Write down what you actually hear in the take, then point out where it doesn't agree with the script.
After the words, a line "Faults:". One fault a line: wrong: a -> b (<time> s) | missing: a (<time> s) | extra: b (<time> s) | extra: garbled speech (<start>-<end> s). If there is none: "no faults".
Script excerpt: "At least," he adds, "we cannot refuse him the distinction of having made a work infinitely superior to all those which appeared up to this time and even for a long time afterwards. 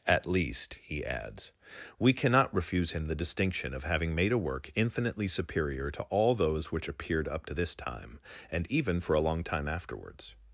"At least," he adds, "we cannot refuse him the distinction of having made a work infinitely superior to all those which appeared up to this time and even for a long time afterwards.
Faults:
no faults